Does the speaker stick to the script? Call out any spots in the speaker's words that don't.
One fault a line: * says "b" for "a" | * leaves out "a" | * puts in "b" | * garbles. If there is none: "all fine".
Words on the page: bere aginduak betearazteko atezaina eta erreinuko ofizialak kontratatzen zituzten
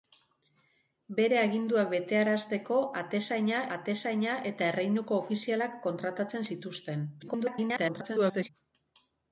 * puts in "atezaina"
* garbles